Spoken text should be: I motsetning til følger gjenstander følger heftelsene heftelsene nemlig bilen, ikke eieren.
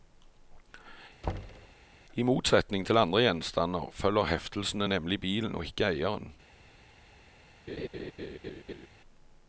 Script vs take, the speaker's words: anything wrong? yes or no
yes